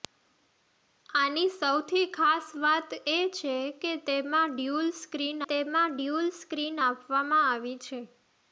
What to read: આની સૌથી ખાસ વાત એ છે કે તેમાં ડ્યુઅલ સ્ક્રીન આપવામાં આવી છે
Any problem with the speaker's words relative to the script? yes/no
yes